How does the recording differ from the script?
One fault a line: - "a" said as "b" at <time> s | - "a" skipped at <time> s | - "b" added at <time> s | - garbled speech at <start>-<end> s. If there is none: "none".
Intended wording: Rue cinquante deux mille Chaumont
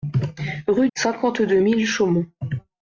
none